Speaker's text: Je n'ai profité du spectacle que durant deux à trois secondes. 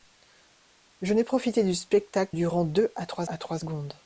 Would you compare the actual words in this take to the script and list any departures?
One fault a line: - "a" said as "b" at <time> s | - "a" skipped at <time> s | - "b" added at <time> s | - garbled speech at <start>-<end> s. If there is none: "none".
- "que" skipped at 2.3 s
- "à trois" added at 3.2 s